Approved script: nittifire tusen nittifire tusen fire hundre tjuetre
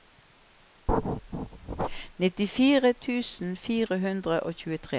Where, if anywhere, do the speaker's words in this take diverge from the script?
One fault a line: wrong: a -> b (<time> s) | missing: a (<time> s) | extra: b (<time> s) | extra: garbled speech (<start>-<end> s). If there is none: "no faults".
missing: nittifire tusen (3.5 s)
extra: og (4.4 s)